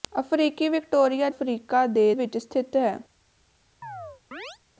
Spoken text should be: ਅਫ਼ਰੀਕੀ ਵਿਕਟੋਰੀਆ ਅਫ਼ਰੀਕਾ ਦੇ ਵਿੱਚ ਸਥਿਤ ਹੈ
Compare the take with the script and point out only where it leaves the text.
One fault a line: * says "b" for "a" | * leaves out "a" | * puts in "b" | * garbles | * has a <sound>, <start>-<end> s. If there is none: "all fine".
* has a chirp, 3.8-4.6 s